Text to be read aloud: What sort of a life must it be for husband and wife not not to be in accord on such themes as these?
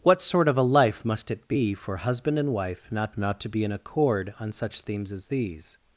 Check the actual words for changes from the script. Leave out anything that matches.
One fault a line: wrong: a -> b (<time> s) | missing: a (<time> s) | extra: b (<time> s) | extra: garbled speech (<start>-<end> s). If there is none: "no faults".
no faults